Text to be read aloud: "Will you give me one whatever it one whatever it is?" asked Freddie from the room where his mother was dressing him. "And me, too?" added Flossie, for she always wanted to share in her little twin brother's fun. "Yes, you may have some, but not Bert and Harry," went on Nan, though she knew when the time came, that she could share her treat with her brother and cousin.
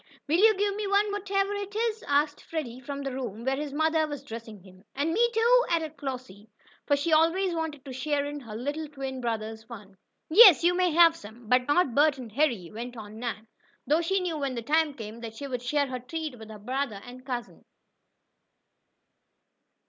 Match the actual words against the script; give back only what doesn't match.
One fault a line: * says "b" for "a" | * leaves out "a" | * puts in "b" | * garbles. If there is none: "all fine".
* leaves out "one whatever it"
* says "would" for "could"